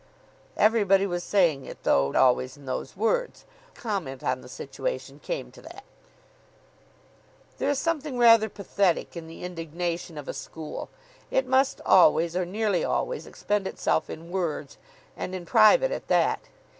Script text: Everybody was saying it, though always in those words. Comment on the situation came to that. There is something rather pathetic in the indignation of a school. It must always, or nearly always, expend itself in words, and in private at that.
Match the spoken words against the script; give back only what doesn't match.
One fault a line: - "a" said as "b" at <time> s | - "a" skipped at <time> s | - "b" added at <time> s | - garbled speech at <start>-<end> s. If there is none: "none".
none